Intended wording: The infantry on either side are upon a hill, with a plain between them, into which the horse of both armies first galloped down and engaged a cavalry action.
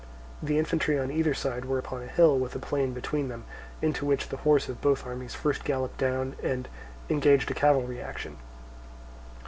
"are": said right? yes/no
no